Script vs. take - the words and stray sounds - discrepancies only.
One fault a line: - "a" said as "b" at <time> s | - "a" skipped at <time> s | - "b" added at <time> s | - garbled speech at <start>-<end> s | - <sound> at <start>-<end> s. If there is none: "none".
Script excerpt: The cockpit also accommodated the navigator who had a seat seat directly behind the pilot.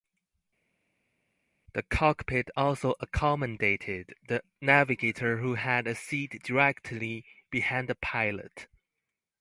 - "seat" skipped at 6.4 s